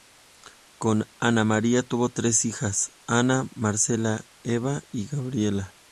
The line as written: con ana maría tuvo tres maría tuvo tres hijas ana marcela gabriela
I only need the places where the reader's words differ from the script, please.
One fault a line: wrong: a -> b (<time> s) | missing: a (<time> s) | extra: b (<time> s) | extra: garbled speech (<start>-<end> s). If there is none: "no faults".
missing: maría tuvo tres (2.4 s)
extra: eva y (4.4 s)